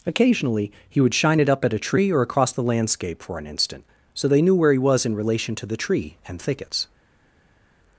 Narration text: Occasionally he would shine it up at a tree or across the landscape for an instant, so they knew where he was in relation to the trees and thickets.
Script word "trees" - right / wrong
wrong